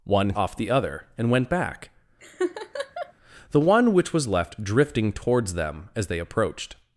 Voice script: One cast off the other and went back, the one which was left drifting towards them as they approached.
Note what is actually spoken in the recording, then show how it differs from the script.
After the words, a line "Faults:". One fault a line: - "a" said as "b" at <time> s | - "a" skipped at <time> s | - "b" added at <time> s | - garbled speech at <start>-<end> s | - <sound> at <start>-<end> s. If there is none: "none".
One off the other and went back, the one which was left drifting towards them as they approached.
Faults:
- "cast" skipped at 0.3 s
- laugh at 2.2-3.1 s